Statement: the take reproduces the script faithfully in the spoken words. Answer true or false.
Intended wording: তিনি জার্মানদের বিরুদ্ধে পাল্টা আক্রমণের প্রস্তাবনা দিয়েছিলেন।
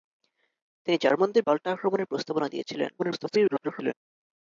false